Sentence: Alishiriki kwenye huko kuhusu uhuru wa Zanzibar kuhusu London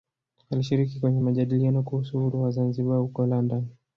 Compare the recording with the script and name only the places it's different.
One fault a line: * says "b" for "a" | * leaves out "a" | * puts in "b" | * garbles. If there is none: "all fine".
* says "majadiliano" for "huko"
* says "huko" for "kuhusu"